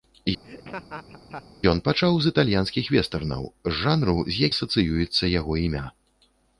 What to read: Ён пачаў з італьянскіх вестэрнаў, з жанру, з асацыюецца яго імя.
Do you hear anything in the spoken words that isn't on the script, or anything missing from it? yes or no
no